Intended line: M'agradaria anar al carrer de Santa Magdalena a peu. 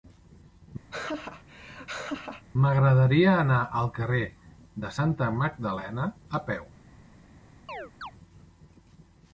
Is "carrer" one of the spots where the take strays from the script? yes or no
no